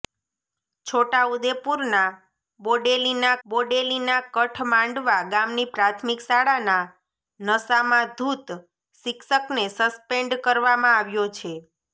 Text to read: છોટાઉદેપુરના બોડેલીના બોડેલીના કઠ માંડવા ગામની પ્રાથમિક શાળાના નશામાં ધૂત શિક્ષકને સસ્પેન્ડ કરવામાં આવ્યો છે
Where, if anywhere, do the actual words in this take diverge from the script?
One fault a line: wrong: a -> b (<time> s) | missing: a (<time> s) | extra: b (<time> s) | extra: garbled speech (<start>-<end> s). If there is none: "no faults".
no faults